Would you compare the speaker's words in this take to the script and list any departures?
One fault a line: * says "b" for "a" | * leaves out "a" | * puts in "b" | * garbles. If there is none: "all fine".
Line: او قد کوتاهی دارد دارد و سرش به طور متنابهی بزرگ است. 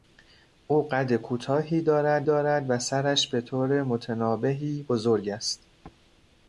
all fine